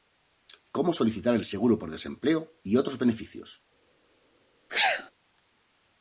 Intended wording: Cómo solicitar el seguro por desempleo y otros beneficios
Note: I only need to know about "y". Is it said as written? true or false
true